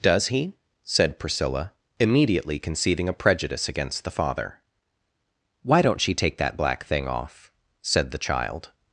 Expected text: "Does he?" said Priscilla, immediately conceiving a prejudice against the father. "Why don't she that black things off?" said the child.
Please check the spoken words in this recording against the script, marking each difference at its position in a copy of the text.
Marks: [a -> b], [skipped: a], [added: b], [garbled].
"Does he?" said Priscilla, immediately conceiving a prejudice against the father. "Why don't she [added: take] that black [things -> thing] off?" said the child.